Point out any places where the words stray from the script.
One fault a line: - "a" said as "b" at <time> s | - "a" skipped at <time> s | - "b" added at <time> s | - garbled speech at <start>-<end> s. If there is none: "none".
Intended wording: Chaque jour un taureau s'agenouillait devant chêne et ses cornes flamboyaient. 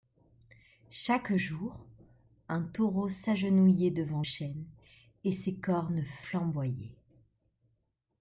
none